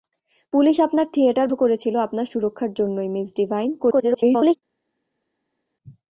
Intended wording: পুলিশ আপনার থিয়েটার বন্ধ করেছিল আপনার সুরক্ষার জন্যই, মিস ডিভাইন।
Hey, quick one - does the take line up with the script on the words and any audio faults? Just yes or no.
no